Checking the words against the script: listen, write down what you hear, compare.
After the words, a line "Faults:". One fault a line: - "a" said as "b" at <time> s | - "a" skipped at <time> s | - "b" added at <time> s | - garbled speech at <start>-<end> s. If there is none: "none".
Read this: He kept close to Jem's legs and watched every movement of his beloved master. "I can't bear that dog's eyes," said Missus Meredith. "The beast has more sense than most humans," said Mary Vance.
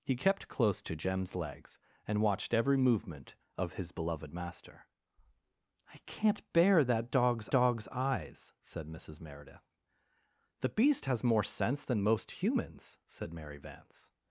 He kept close to Jem's legs and watched every movement of his beloved master. "I can't bear that dog's dog's eyes," said Missus Meredith. "The beast has more sense than most humans," said Mary Vance.
Faults:
- "dog's" added at 7.5 s